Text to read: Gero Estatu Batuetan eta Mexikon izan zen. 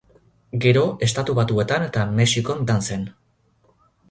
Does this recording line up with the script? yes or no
yes